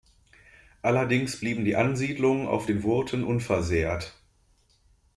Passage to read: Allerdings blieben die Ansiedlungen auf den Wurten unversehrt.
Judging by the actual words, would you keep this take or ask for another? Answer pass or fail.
pass